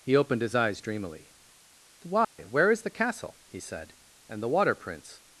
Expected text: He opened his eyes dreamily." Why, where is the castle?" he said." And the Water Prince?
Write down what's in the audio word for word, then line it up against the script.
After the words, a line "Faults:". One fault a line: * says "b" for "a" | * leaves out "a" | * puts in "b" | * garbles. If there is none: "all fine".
He opened his eyes dreamily." Why, where is the castle?" he said." And the Water Prince?
Faults:
all fine